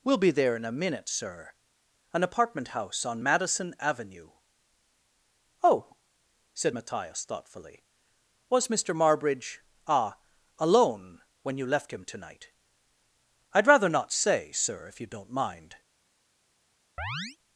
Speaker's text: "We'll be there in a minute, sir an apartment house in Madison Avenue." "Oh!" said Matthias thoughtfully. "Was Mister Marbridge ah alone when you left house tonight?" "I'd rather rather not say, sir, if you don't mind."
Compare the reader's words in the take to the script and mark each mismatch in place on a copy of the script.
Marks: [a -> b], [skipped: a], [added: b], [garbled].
"We'll be there in a minute, sir an apartment house [in -> on] Madison Avenue." "Oh!" said Matthias thoughtfully. "Was Mister Marbridge ah alone when you left [house -> him] tonight?" "I'd rather [skipped: rather] not say, sir, if you don't mind."